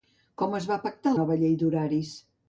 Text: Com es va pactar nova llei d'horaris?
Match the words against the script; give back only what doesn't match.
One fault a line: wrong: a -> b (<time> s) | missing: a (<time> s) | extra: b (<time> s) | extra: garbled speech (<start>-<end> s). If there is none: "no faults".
no faults